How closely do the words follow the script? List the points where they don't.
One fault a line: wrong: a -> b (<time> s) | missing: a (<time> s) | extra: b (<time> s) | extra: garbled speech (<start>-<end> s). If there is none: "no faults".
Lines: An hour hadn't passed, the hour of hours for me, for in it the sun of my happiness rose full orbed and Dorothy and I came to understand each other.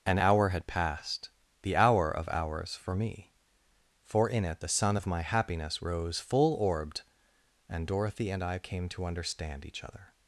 wrong: hadn't -> had (0.5 s)